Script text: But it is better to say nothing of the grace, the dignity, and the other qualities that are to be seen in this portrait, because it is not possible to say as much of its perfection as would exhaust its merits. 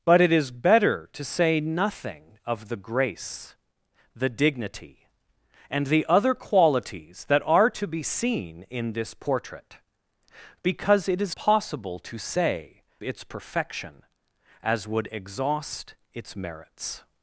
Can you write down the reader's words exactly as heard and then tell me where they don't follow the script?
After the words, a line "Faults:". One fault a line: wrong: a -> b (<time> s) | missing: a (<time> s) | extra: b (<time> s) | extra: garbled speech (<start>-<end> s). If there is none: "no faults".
But it is better to say nothing of the grace, the dignity, and the other qualities that are to be seen in this portrait, because it is possible to say its perfection as would exhaust its merits.
Faults:
missing: not (11.3 s)
missing: as much of (12.8 s)